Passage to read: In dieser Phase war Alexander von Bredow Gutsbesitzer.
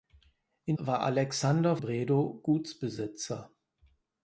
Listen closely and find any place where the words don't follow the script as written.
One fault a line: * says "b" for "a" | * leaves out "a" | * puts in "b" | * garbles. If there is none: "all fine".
* leaves out "dieser Phase"
* leaves out "von"